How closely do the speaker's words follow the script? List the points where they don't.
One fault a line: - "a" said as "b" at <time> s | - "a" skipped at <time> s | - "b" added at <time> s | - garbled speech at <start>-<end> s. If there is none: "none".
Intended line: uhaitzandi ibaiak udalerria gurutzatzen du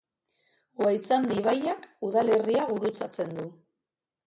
none